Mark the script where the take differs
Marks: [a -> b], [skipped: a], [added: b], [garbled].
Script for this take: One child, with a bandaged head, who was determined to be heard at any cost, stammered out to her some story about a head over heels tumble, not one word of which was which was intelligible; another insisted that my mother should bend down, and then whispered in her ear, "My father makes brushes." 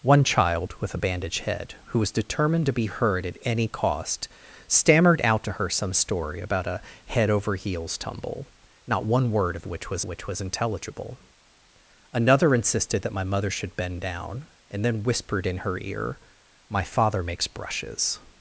One child, with a bandaged head, who was determined to be heard at any cost, stammered out to her some story about a head over heels tumble, not one word of which was which was intelligible; another insisted that my mother should bend down, and then whispered in her ear, "My father makes brushes."